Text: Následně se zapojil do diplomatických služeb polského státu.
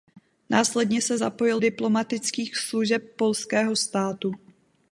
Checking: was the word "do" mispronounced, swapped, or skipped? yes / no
yes